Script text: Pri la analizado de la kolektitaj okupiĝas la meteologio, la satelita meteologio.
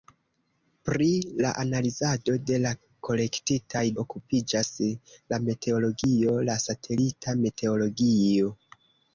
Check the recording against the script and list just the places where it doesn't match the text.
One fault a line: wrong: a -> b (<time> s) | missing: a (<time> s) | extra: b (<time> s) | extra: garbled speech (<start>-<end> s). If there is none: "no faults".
no faults